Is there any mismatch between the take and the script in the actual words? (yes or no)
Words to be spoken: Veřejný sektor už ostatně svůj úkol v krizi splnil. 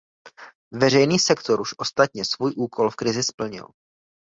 no